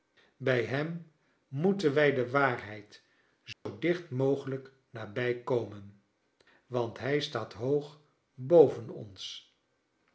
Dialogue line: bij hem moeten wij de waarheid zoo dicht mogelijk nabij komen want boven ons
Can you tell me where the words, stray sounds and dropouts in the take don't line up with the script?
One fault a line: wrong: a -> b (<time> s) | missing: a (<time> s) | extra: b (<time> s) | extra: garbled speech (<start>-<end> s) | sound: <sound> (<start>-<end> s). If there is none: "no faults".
sound: dropout (3.5-3.7 s)
extra: hij staat hoog (7.0 s)